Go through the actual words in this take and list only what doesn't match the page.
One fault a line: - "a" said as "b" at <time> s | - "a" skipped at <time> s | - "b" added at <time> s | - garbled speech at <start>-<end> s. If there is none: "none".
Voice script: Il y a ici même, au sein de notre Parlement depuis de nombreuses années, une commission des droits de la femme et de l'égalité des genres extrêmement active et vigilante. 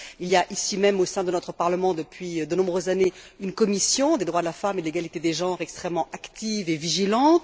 none